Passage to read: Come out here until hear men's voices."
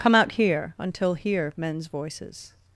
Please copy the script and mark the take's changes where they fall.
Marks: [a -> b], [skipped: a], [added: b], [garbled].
Come out here until hear men's voices."